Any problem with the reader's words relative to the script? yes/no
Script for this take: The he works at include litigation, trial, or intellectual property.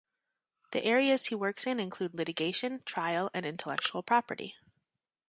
yes